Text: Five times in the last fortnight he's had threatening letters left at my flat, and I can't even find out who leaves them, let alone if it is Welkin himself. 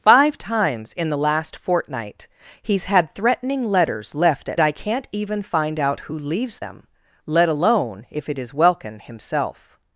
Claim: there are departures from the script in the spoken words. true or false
true